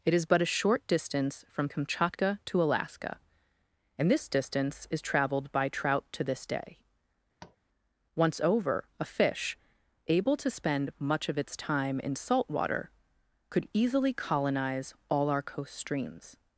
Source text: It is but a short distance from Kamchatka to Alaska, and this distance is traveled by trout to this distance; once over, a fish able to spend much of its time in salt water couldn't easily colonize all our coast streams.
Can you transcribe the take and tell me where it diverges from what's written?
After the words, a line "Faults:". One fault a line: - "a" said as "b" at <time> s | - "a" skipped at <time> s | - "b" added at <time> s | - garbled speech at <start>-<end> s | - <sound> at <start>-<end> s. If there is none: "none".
It is but a short distance from Kamchatka to Alaska, and this distance is traveled by trout to this day; once over, a fish able to spend much of its time in salt water could easily colonize all our coast streams.
Faults:
- "distance" said as "day" at 6.5 s
- tap at 7.4-7.6 s
- "couldn't" said as "could" at 13.5 s